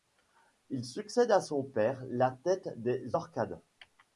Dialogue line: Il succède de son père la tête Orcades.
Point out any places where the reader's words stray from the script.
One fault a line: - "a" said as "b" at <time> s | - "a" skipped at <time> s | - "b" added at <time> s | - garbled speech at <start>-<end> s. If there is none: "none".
- "de" said as "à" at 1.3 s
- "des" added at 2.8 s